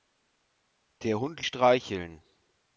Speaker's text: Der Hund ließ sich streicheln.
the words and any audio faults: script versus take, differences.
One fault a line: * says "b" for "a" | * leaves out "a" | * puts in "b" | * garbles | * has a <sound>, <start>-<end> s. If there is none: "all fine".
* leaves out "ließ sich"